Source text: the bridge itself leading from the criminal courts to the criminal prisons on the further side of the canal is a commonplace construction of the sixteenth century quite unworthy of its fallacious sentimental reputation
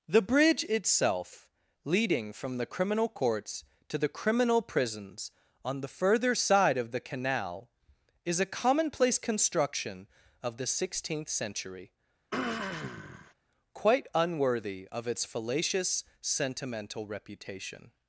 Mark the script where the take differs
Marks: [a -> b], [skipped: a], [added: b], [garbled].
the bridge itself leading from the criminal courts to the criminal prisons on the further side of the canal is a commonplace construction of the sixteenth century quite unworthy of its fallacious sentimental reputation